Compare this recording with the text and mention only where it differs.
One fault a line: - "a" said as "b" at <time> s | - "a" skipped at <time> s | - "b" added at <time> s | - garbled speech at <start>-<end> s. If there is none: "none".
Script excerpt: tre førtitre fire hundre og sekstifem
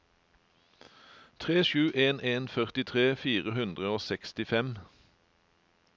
- "sju en en" added at 1.6 s